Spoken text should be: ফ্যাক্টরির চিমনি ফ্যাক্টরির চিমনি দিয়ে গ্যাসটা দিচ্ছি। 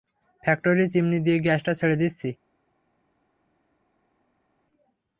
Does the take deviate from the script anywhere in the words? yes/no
yes